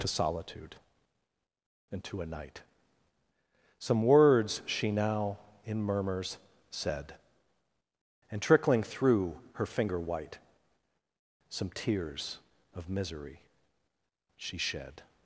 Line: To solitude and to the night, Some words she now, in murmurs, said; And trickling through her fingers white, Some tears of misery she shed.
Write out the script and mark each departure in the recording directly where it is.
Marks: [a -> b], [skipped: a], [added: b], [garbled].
To solitude and to [the -> a] night, Some words she now, in murmurs, said; And trickling through her [fingers -> finger] white, Some tears of misery she shed.